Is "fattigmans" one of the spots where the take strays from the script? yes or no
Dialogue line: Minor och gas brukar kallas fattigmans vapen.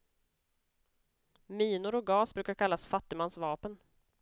no